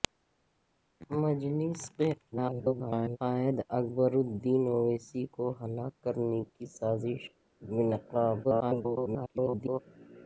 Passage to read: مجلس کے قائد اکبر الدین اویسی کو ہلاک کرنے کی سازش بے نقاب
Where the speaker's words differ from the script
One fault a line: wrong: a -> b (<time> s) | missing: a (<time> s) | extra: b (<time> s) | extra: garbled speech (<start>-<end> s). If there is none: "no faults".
extra: garbled speech (2.3-3.2 s)
extra: garbled speech (8.4-9.8 s)